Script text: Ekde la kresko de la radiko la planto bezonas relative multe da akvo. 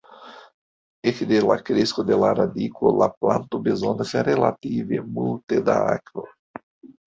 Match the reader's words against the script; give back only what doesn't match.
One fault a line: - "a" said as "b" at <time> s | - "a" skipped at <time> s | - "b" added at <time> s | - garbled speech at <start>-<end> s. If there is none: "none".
none